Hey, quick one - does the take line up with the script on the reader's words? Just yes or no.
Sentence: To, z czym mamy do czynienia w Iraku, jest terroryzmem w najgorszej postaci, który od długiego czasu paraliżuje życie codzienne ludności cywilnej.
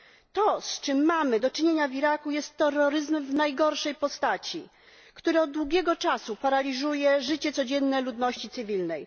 yes